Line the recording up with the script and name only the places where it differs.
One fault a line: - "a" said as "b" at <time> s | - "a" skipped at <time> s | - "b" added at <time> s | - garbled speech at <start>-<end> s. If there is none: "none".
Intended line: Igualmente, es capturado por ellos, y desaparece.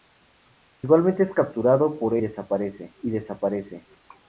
- "ellos" said as "desaparece" at 2.2 s